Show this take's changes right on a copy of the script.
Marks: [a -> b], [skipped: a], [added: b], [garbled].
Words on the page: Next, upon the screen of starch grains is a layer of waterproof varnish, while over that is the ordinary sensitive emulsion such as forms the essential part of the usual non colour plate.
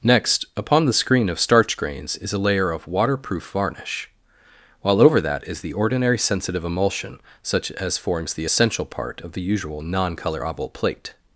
Next, upon the screen of starch grains is a layer of waterproof varnish, while over that is the ordinary sensitive emulsion such as forms the essential part of the usual non [colour -> color oval] plate.